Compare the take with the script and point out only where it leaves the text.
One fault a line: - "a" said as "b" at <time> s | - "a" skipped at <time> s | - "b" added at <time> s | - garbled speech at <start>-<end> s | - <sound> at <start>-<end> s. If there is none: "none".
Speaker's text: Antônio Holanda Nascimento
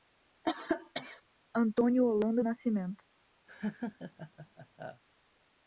- cough at 0.4-1.2 s
- laugh at 3.5-5.0 s